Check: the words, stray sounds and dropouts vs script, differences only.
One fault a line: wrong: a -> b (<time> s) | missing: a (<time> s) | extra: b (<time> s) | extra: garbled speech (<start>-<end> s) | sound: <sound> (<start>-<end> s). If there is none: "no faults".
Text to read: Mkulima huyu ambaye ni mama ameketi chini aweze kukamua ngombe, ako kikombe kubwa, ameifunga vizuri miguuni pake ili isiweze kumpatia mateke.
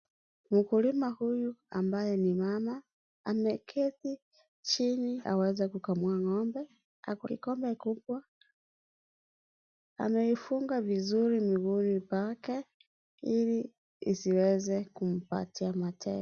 no faults